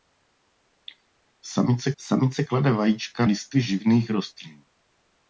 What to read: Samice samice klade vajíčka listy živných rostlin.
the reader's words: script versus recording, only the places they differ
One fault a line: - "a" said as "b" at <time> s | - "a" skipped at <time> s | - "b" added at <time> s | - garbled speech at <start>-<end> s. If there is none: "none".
none